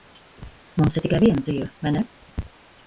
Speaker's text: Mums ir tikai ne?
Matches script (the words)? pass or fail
fail